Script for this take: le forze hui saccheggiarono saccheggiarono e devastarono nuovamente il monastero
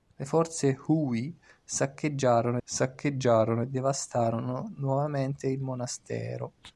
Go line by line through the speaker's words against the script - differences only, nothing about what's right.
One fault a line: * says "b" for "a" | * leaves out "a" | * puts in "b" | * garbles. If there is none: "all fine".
all fine